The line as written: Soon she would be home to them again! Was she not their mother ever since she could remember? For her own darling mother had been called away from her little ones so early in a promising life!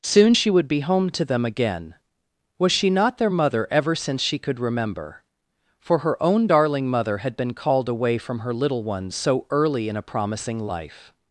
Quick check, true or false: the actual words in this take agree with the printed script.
true